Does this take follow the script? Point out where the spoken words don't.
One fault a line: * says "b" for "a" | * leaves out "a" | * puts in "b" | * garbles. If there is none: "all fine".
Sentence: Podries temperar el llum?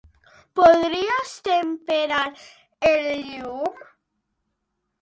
all fine